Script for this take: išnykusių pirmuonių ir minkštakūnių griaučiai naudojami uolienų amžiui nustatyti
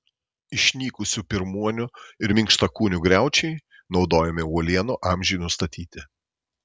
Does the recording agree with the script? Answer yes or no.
yes